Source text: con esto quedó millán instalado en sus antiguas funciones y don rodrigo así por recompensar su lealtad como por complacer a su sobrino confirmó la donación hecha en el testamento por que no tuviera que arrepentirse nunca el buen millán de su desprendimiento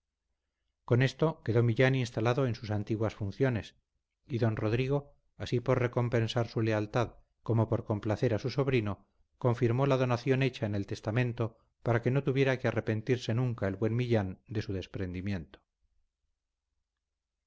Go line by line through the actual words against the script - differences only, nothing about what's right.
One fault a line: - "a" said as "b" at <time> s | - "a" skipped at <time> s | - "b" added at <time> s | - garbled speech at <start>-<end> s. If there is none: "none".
- "por" said as "para" at 11.8 s